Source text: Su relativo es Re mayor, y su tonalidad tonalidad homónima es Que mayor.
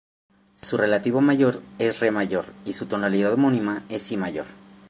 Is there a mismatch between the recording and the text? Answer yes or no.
yes